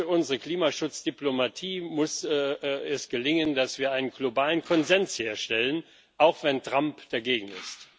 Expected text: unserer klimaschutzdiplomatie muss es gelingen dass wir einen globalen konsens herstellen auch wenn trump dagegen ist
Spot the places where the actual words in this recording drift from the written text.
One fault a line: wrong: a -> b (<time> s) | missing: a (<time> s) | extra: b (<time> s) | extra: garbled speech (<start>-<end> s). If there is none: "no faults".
no faults